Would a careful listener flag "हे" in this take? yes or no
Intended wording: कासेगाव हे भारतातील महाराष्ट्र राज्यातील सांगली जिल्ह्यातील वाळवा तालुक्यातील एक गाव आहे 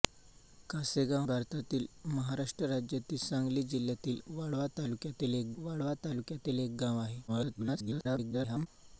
yes